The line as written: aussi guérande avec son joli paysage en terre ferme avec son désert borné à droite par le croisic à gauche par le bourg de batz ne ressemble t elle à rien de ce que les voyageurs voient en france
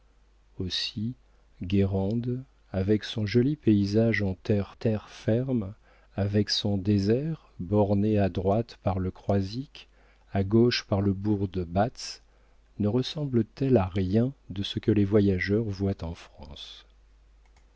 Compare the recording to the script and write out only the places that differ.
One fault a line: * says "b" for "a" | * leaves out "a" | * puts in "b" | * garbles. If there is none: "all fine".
* puts in "terre"